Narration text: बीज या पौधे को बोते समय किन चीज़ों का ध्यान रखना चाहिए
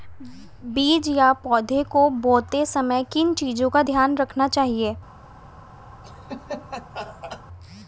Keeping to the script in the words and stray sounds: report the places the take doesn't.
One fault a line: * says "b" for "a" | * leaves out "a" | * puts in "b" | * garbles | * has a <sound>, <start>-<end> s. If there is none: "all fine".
* has a laugh, 6.0-7.4 s